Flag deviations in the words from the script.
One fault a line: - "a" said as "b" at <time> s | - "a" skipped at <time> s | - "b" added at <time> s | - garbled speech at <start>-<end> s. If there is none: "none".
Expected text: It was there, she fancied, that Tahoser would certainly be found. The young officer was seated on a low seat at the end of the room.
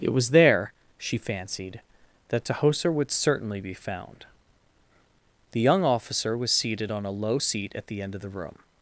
none